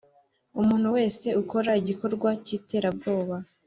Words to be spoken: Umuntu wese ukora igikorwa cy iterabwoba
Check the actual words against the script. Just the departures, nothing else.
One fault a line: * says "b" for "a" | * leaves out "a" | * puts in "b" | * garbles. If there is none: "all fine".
all fine